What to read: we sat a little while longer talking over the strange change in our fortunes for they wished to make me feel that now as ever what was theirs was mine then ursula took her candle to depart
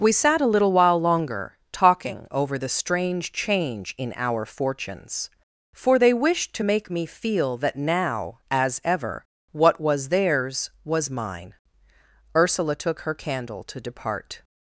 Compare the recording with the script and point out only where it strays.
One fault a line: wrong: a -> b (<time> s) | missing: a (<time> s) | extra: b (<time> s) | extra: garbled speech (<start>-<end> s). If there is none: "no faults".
missing: then (11.5 s)